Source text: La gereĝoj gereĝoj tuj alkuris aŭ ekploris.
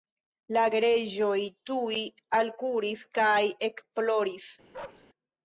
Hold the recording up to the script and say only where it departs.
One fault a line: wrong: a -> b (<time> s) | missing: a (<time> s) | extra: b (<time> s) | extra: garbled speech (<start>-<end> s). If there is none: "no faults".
missing: gereĝoj (1.4 s)
wrong: aŭ -> kaj (3.2 s)